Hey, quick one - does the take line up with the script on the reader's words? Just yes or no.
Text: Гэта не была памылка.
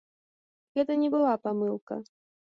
yes